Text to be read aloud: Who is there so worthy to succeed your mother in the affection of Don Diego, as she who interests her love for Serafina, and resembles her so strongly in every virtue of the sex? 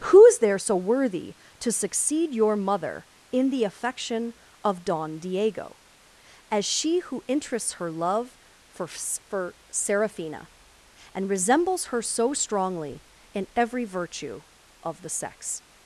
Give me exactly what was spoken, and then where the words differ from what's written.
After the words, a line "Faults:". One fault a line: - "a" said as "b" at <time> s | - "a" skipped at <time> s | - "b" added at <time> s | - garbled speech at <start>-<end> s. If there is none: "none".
Who is there so worthy to succeed your mother in the affection of Don Diego, as she who interests her love for for Serafina, and resembles her so strongly in every virtue of the sex?
Faults:
- "for" added at 8.9 s